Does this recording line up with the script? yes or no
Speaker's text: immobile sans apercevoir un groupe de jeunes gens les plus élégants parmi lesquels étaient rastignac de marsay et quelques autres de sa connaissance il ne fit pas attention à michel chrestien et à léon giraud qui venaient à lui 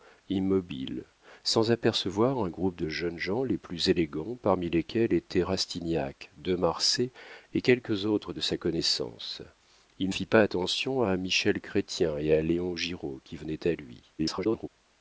no